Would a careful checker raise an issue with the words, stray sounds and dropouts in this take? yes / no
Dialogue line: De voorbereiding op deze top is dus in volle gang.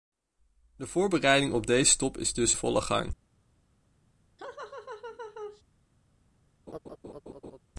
yes